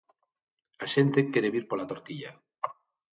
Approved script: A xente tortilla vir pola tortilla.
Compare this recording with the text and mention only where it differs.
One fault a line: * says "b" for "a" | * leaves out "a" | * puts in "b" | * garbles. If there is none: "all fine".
* says "quere" for "tortilla"